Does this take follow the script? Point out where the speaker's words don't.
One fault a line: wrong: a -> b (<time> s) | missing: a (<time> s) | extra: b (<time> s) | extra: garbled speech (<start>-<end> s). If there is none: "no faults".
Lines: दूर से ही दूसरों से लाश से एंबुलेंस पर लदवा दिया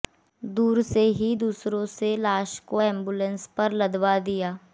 wrong: से -> को (2.7 s)